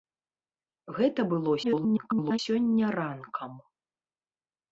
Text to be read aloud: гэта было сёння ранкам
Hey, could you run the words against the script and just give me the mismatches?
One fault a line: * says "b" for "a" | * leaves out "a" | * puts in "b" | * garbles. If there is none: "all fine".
* garbles